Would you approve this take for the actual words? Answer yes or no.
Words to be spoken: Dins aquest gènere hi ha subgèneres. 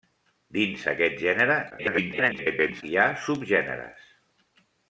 no